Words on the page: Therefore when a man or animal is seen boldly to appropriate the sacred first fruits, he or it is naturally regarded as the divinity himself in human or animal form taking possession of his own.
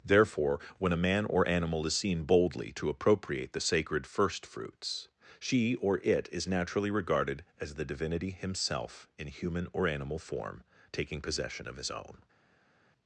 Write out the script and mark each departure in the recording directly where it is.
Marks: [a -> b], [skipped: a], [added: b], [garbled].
Therefore when a man or animal is seen boldly to appropriate the sacred first fruits, [he -> she] or it is naturally regarded as the divinity himself in human or animal form taking possession of his own.